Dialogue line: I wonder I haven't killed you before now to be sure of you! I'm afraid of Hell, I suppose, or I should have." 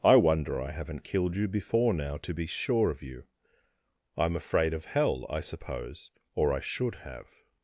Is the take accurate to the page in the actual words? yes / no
yes